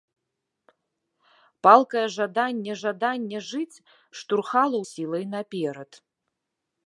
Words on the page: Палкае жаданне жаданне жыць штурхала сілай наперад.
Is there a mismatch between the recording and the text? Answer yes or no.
no